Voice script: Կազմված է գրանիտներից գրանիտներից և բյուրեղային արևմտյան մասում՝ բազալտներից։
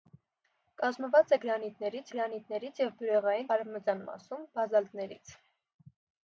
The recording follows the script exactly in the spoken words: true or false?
true